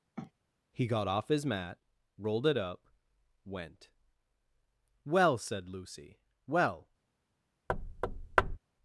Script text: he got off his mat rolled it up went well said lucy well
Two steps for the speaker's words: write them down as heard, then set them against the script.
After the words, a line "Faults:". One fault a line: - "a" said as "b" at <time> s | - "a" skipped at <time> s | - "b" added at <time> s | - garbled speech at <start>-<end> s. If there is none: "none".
he got off his mat rolled it up went well said lucy well
Faults:
none